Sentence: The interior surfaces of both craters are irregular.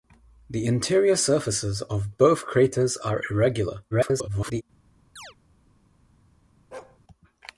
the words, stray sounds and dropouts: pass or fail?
fail